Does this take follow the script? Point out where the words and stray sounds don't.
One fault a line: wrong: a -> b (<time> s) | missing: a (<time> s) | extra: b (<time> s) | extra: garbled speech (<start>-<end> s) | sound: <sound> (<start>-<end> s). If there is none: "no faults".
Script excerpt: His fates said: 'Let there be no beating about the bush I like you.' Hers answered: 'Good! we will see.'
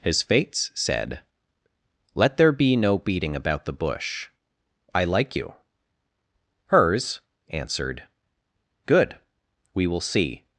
no faults